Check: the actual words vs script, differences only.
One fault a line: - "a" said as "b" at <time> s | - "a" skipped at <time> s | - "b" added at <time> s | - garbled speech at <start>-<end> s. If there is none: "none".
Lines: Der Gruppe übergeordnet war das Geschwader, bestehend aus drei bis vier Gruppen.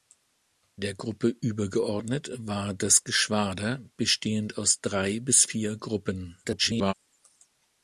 - garbled speech at 6.4-6.9 s